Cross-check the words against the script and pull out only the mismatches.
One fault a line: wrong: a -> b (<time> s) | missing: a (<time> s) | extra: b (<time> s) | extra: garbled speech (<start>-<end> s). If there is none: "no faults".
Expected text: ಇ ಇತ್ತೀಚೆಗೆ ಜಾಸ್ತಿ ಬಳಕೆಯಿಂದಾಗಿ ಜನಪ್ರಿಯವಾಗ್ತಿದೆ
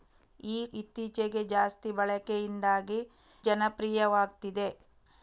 no faults